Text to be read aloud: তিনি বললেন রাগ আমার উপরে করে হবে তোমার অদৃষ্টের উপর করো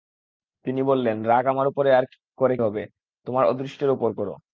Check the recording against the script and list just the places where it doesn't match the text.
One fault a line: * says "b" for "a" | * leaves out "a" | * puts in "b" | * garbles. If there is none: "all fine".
all fine